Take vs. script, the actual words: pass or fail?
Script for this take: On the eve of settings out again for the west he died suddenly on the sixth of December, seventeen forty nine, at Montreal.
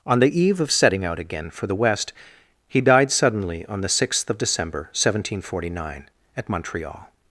fail